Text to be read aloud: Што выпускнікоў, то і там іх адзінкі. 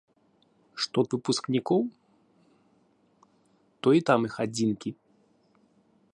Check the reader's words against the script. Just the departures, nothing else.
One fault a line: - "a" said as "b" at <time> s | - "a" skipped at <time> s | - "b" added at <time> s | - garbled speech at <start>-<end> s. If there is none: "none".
none